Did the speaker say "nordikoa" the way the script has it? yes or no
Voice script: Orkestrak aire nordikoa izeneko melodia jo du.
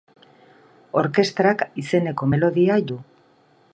no